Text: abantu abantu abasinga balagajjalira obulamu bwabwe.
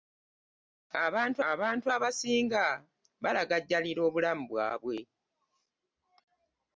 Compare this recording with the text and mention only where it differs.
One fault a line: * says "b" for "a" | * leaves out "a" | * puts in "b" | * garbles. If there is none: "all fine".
all fine